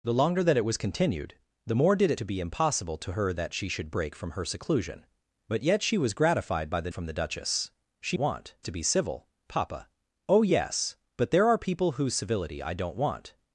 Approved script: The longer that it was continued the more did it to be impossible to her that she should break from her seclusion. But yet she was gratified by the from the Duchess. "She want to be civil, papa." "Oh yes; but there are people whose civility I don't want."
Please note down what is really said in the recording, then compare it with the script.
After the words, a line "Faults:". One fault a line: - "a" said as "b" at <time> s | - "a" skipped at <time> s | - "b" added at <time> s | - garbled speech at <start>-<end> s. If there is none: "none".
The longer that it was continued the more did it to be impossible to her that she should break from her seclusion. But yet she was gratified by the from the Duchess. "She want to be civil, papa." "Oh yes; but there are people whose civility I don't want."
Faults:
none